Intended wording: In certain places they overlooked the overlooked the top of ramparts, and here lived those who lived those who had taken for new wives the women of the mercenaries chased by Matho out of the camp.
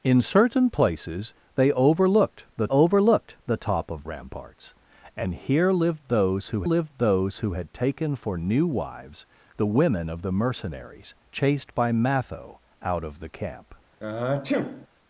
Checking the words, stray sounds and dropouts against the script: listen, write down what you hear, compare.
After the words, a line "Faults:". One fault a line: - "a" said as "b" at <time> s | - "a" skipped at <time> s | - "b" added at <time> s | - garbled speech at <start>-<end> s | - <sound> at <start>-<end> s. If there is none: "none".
In certain places they overlooked the overlooked the top of ramparts, and here lived those who lived those who had taken for new wives the women of the mercenaries chased by Matho out of the camp.
Faults:
- sniff at 14.0-14.9 s